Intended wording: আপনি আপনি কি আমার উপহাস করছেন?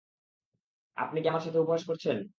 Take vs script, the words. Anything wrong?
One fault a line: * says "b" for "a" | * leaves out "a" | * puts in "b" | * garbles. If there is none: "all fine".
* leaves out "আপনি"
* puts in "সাথে"